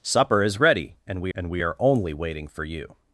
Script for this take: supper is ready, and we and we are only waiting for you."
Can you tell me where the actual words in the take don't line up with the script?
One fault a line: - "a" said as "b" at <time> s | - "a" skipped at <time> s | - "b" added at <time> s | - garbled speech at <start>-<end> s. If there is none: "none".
none